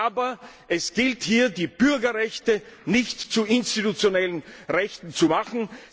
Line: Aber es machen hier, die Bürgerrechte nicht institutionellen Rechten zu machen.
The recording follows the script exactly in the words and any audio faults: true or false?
false